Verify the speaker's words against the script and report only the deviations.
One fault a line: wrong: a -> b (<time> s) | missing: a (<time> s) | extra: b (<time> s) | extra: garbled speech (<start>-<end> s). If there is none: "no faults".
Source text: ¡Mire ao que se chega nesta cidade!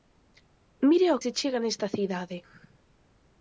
missing: que (1.2 s)